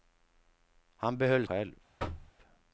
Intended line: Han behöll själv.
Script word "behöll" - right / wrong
right